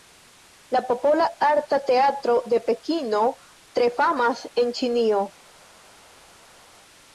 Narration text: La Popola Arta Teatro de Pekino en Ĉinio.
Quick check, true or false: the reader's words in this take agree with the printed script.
false